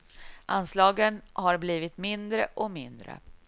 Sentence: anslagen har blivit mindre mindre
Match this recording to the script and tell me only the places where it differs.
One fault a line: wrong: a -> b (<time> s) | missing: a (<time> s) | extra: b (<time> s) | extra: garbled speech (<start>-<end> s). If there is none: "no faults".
extra: och (2.5 s)